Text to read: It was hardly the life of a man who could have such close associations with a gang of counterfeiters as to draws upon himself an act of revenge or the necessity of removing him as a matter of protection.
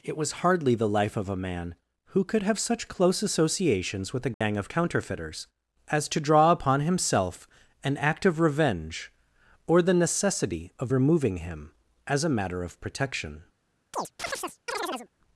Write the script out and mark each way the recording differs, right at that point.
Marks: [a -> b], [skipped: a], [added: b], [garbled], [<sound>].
It was hardly the life of a man who could have such close associations with a gang [dropout] of counterfeiters as to [draws -> draw] upon himself an act of revenge or the necessity of removing him as a matter of protection. [chirp]